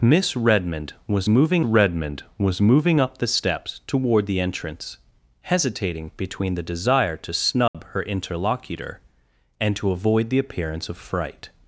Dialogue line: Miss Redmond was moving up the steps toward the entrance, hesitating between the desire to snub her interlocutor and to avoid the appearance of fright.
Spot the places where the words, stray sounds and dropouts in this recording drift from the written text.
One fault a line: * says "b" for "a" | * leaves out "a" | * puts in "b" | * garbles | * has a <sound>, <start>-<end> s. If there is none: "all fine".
* puts in "Redmond was moving"
* has a dropout, 7.7-7.7 s